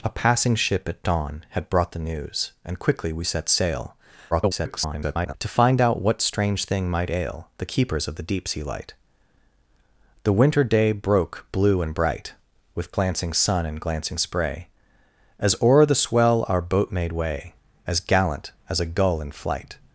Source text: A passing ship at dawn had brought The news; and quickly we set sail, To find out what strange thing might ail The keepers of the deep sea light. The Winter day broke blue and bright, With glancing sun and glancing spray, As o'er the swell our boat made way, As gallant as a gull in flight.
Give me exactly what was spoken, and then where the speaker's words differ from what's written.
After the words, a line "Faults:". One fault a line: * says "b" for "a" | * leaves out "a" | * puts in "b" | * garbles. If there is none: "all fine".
A passing ship at dawn had brought The news; and quickly we set sail, [garbled] To find out what strange thing might ail The keepers of the deep sea light. The Winter day broke blue and bright, With glancing sun and glancing spray, As o'er the swell our boat made way, As gallant as a gull in flight.
Faults:
* garbles